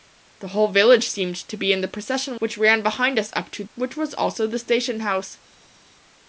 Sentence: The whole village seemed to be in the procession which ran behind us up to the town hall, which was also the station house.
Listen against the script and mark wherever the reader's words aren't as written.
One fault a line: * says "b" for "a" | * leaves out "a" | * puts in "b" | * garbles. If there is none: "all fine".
* leaves out "the town hall"